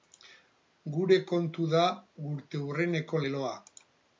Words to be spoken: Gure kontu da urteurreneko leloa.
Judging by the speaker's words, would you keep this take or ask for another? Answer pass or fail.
pass